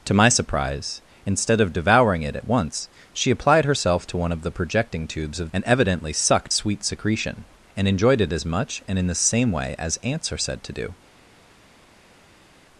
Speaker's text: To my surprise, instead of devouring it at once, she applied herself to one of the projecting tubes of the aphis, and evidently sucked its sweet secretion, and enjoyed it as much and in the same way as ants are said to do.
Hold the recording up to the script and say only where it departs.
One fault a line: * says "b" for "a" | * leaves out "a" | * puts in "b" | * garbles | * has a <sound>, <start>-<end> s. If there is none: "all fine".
* leaves out "the aphis"
* leaves out "its"